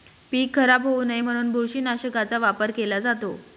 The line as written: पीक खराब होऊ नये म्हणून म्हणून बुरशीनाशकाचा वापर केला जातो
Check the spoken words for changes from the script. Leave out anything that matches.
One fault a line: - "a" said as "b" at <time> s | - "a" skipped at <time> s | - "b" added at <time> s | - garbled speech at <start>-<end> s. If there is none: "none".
- "म्हणून" skipped at 1.5 s